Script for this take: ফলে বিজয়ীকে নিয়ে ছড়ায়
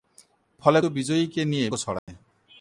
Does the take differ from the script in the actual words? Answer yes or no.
no